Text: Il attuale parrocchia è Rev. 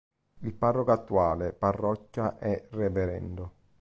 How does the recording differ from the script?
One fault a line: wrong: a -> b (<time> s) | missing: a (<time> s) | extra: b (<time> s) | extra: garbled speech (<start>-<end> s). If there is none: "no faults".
extra: parroco (0.6 s)